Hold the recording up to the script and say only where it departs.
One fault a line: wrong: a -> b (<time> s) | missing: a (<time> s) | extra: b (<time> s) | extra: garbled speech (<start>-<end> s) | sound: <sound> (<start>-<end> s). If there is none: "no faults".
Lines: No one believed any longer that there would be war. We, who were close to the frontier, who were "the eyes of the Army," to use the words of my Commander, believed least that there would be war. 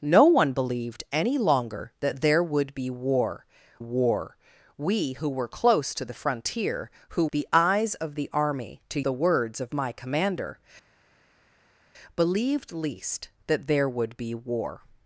extra: war (3.8 s)
missing: were (7.3 s)
missing: use (9.0 s)